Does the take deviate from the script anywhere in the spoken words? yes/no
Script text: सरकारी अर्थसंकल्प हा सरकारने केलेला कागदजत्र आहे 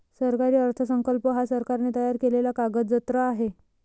yes